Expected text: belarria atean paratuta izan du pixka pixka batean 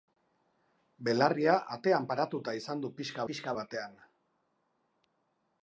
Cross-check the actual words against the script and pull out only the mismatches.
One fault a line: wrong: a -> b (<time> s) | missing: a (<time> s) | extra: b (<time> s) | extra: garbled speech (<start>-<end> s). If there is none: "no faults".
no faults